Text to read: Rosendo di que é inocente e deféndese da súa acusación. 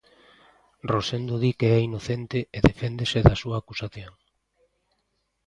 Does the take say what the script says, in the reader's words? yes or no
yes